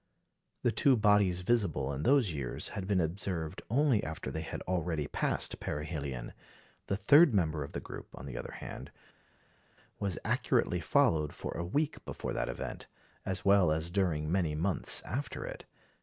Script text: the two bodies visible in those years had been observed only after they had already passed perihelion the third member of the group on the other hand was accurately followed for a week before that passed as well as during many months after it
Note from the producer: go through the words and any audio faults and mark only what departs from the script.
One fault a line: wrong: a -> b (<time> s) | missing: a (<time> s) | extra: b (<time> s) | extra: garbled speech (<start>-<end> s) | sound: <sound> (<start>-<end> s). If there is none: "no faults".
wrong: passed -> event (12.5 s)